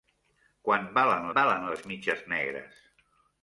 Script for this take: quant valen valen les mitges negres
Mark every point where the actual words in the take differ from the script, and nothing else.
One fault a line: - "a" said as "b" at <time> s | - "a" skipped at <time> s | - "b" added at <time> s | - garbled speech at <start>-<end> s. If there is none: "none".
none